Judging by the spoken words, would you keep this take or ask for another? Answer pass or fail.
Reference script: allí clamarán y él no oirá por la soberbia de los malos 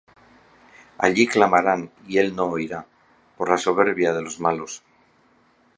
pass